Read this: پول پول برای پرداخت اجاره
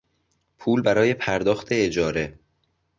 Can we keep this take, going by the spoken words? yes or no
no